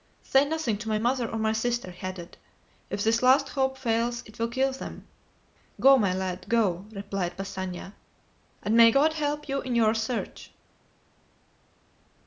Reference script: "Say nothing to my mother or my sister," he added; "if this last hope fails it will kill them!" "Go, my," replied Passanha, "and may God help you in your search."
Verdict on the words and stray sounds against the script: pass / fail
fail